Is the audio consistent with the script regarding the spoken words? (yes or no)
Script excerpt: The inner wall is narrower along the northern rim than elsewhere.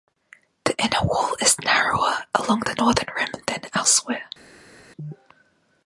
yes